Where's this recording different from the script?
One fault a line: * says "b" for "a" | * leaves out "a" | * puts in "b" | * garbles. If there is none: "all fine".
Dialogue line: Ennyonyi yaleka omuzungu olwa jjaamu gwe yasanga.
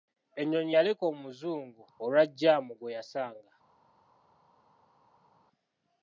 all fine